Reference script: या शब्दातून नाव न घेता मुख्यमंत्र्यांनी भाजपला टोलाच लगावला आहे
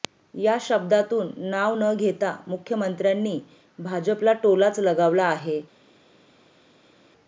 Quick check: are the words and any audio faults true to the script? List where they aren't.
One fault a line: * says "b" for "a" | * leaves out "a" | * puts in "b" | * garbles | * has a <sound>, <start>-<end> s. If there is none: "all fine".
all fine